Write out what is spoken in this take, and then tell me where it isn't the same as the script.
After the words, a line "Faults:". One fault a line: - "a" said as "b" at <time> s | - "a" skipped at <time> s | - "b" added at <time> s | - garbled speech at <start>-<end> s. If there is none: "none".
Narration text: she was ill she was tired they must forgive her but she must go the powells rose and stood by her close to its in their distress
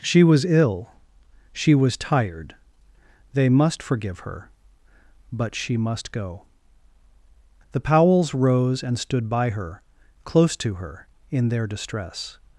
she was ill she was tired they must forgive her but she must go the powells rose and stood by her close to her in their distress
Faults:
- "its" said as "her" at 10.8 s